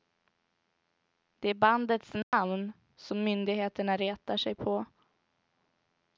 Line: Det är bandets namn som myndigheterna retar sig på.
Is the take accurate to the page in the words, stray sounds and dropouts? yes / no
no